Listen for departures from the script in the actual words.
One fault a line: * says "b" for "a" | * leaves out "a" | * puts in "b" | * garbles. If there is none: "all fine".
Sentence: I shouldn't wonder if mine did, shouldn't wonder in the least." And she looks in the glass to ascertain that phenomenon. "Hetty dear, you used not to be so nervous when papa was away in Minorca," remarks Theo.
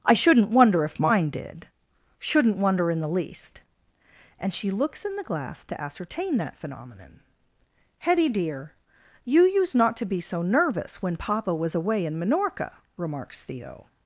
all fine